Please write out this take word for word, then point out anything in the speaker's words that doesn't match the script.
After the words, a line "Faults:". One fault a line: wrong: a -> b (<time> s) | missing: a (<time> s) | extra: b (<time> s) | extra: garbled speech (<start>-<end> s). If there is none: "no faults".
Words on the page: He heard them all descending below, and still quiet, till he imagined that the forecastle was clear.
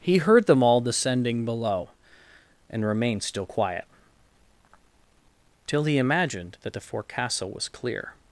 He heard them all descending below, and remained still quiet, till he imagined that the forecastle was clear.
Faults:
extra: remained (2.8 s)